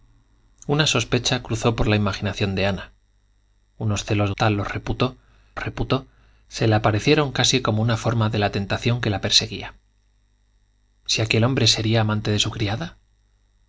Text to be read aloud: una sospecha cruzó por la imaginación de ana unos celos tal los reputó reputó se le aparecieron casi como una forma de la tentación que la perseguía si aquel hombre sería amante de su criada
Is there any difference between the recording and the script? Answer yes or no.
no